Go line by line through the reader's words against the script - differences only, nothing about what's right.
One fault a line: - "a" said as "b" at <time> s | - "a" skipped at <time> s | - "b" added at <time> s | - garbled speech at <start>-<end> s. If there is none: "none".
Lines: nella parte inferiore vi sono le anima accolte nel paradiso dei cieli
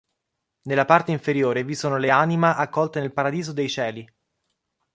none